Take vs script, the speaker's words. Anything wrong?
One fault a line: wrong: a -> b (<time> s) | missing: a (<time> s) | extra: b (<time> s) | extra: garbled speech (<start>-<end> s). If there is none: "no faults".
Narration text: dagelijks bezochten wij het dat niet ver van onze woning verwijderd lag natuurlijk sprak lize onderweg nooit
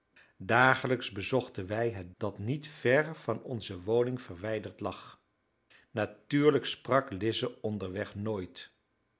no faults